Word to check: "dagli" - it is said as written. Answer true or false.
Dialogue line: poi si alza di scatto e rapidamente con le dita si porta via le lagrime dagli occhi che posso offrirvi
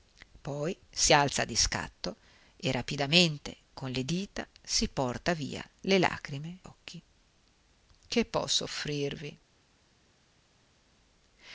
false